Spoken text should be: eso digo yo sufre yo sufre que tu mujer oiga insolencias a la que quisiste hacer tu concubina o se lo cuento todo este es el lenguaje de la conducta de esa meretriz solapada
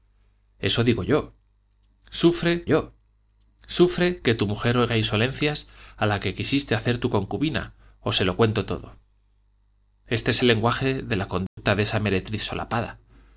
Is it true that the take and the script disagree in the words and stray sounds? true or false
true